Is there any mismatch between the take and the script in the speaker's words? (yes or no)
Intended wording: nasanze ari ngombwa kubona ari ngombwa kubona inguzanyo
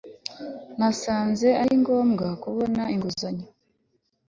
yes